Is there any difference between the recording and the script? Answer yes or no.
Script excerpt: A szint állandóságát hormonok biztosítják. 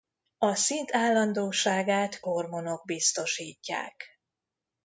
no